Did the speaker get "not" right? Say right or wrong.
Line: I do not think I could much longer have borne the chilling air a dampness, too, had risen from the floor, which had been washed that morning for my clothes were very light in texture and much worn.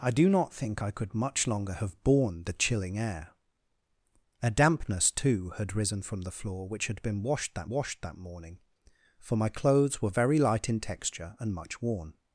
right